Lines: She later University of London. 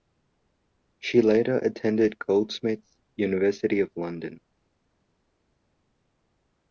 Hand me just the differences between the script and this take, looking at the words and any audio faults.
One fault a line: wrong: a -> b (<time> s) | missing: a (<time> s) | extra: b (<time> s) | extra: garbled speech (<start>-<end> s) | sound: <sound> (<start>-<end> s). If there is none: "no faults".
extra: attended Goldsmiths (1.6 s)